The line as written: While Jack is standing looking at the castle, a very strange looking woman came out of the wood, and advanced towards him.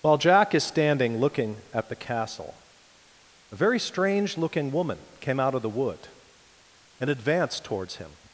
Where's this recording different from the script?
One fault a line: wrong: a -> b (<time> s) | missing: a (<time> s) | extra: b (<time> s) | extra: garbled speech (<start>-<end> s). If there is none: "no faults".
no faults